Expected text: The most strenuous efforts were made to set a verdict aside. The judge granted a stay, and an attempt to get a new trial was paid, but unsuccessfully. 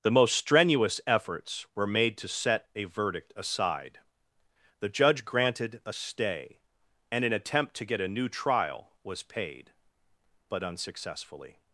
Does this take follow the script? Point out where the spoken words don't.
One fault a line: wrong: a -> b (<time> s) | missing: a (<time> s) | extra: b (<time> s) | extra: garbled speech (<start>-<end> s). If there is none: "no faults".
no faults